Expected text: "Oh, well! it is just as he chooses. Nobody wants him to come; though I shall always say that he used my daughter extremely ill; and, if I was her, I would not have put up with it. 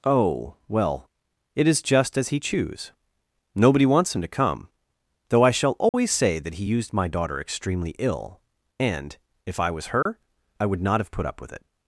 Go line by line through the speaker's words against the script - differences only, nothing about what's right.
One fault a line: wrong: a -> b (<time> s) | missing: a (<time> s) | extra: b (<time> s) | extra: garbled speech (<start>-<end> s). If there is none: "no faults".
wrong: chooses -> choose (2.4 s)